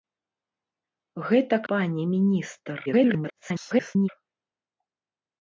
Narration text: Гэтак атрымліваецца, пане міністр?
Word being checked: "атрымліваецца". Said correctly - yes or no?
no